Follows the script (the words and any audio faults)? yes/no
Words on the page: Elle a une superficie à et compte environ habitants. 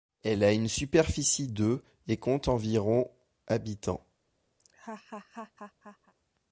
no